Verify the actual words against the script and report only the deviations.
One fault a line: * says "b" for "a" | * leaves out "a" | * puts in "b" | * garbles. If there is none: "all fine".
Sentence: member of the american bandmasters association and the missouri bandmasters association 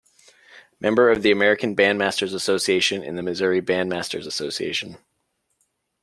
all fine